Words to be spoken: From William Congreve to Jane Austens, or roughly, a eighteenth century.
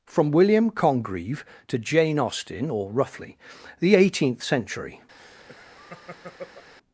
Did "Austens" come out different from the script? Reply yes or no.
yes